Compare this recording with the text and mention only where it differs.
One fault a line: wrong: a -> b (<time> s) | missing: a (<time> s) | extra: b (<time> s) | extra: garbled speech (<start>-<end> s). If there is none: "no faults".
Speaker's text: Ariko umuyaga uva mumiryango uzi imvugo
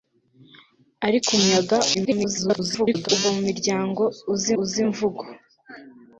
extra: garbled speech (1.9-3.1 s)
extra: uzi (4.6 s)